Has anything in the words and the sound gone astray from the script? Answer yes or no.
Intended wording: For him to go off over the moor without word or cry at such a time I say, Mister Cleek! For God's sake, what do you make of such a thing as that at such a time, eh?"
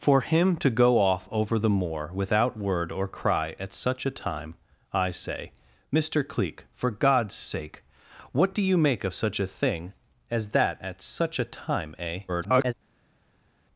yes